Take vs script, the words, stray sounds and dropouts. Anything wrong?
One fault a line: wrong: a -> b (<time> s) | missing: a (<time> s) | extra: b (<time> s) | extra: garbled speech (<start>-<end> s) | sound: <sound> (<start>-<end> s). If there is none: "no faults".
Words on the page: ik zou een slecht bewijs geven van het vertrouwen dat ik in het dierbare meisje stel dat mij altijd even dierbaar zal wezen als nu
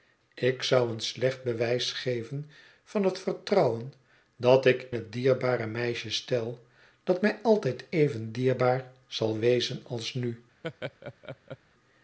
missing: in (4.9 s)
sound: laugh (10.6-11.6 s)